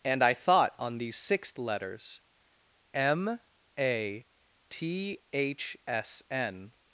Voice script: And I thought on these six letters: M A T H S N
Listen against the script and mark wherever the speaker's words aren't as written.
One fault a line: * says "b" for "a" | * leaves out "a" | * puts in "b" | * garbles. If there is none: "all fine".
* says "sixth" for "six"